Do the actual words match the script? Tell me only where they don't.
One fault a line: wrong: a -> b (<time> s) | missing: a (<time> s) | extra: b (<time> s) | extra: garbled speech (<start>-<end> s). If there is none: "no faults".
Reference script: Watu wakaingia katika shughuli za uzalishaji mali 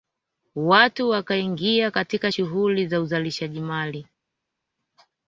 no faults